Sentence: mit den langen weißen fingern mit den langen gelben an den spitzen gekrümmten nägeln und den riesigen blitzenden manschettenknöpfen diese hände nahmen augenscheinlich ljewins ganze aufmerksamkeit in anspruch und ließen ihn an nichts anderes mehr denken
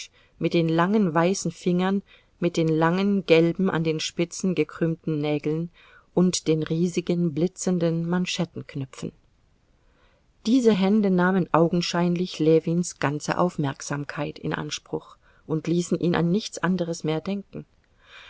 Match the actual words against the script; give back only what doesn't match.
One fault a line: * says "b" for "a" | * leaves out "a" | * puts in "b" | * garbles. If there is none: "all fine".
all fine